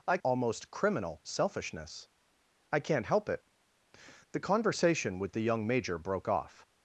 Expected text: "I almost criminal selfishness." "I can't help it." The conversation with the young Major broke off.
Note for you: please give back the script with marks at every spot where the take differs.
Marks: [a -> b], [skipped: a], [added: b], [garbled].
"I almost criminal selfishness." "I can't help it." The conversation with the young Major broke off.